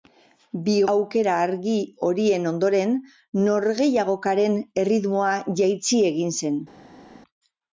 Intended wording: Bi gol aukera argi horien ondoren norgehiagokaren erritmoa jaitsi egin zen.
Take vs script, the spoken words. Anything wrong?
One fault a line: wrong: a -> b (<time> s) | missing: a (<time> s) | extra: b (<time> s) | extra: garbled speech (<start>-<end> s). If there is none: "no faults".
missing: gol (0.8 s)